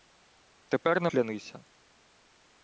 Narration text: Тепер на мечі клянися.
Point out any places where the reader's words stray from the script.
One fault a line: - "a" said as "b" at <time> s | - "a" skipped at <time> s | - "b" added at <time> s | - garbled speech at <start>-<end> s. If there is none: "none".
- "мечі" skipped at 1.1 s